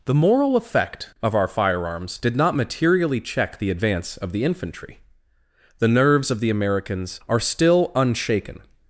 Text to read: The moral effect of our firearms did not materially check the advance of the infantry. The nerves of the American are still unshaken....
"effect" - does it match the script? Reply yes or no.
yes